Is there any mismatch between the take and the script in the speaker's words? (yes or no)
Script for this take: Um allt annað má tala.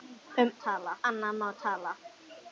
yes